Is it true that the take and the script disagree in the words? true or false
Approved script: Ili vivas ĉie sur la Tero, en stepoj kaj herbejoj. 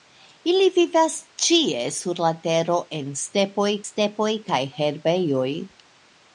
true